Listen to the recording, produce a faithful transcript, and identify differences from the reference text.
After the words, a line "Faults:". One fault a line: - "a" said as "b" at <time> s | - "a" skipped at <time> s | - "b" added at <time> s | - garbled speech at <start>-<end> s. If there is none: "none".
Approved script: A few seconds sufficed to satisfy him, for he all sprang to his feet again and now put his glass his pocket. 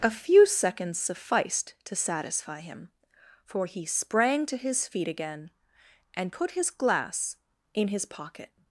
A few seconds sufficed to satisfy him, for he sprang to his feet again and put his glass in his pocket.
Faults:
- "all" skipped at 3.9 s
- "now" skipped at 6.3 s
- "in" added at 7.8 s